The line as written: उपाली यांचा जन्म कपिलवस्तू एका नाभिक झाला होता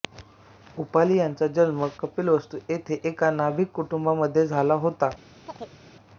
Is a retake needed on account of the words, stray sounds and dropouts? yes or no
yes